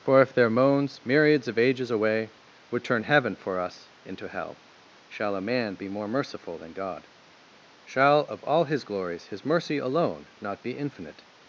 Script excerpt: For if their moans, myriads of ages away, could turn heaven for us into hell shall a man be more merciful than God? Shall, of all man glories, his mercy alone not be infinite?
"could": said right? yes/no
no